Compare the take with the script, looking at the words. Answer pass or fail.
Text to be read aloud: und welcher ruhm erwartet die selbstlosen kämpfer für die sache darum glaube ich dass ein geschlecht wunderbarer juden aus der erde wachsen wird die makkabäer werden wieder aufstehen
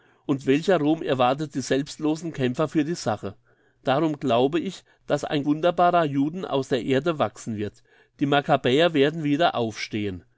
fail